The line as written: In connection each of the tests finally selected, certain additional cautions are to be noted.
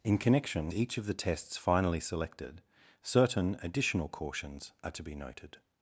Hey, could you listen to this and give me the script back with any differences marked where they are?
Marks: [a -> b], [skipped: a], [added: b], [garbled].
In connection each of the tests finally selected, certain additional cautions are to be noted.